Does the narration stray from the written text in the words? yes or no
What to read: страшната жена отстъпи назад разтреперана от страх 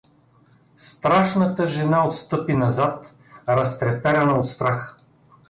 no